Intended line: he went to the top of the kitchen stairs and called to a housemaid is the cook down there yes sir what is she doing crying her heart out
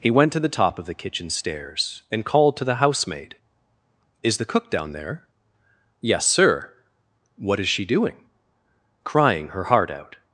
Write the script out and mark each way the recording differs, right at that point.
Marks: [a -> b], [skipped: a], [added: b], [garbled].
he went to the top of the kitchen stairs and called to [a -> the] housemaid is the cook down there yes sir what is she doing crying her heart out